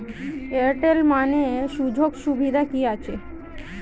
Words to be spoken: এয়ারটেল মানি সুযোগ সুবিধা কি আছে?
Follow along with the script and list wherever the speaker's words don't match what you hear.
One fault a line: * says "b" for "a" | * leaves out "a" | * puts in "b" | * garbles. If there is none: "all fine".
all fine